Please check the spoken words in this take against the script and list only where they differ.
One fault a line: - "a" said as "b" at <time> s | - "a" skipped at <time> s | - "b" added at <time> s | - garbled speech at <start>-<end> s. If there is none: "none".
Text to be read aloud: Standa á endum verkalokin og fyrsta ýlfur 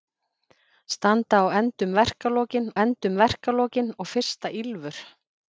- "endum verkalokin" added at 2.8 s